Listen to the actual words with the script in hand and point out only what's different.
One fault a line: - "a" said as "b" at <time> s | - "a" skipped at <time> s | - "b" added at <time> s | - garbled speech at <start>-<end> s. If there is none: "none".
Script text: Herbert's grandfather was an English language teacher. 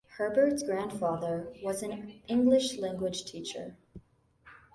none